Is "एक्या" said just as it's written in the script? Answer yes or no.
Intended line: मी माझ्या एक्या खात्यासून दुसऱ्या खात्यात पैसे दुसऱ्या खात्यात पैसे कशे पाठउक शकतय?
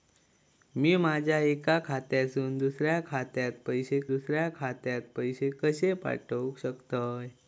yes